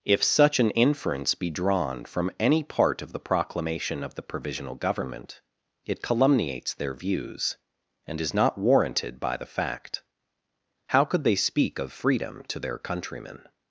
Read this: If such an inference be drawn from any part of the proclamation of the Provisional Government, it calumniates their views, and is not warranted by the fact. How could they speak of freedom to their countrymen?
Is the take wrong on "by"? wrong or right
right